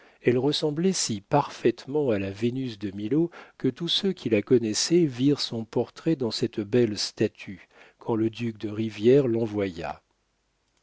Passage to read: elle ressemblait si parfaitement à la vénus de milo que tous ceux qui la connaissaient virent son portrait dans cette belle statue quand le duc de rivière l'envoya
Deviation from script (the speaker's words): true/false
false